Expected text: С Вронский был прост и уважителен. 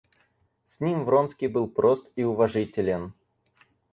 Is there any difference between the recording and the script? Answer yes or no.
yes